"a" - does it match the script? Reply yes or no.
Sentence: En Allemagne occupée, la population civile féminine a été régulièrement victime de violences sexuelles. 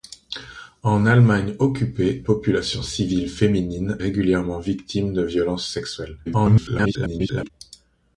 no